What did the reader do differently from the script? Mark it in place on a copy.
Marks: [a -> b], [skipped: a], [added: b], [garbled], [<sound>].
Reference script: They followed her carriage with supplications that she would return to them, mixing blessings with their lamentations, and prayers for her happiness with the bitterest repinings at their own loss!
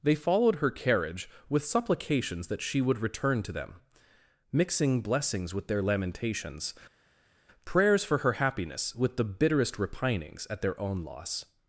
They followed her carriage with supplications that she would return to them, mixing blessings with their lamentations, [skipped: and] prayers for her happiness with the bitterest repinings at their own loss!